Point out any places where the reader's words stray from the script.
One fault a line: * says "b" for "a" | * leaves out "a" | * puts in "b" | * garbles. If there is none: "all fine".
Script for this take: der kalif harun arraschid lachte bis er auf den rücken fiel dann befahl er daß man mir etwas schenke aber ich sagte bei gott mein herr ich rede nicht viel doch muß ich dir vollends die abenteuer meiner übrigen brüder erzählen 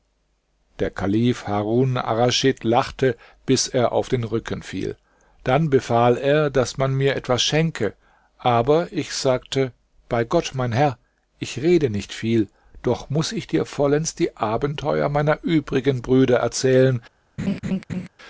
all fine